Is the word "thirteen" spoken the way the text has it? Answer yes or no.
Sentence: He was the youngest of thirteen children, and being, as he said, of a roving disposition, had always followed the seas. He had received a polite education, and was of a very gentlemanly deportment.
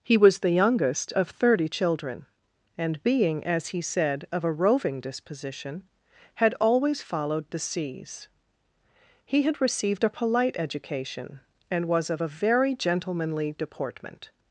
no